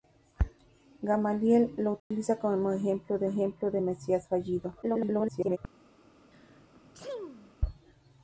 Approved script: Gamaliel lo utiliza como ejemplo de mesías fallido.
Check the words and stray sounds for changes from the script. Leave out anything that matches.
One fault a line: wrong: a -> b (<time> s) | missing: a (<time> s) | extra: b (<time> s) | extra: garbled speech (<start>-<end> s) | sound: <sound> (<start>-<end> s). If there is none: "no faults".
sound: dropout (2.0-2.1 s)
extra: ejemplo de (3.2 s)
extra: garbled speech (4.8-5.6 s)
sound: sneeze (6.3-7.5 s)